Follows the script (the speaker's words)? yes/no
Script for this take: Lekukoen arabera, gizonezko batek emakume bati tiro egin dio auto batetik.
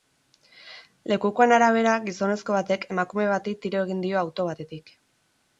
yes